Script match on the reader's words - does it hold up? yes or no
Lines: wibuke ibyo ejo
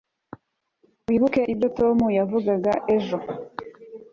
no